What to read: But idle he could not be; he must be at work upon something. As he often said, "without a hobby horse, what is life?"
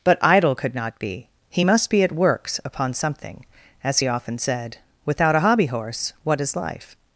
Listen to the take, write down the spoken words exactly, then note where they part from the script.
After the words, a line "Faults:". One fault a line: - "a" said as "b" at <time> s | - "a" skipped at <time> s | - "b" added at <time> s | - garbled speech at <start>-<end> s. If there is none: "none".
But idle could not be; he must be at works upon something. As he often said, "without a hobby horse, what is life?"
Faults:
- "he" skipped at 0.6 s
- "work" said as "works" at 2.1 s